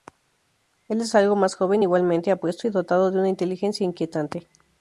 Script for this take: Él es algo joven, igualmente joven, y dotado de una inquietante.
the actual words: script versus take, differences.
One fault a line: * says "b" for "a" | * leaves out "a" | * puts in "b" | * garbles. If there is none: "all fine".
* puts in "más"
* says "apuesto" for "joven"
* puts in "inteligencia"